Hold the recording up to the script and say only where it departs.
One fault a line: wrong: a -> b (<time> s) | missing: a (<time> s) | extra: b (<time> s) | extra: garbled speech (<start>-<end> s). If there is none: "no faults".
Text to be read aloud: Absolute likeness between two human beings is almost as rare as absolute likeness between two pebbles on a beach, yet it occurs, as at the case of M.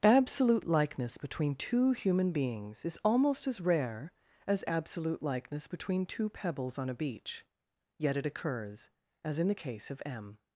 wrong: at -> in (9.4 s)